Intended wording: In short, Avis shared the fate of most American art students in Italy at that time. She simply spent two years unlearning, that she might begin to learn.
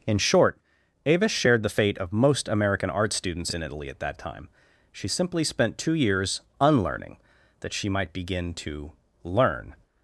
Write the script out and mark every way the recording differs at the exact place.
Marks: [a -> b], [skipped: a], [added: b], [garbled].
In short, Avis shared the fate of most American art students in Italy at that time. She simply spent two years unlearning, that she might begin to learn.